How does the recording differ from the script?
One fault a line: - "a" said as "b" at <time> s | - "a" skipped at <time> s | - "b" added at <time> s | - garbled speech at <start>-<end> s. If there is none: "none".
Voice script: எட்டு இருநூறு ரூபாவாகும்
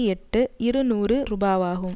none